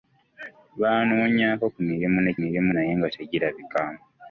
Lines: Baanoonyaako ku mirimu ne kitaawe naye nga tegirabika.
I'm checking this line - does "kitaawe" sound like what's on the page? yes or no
no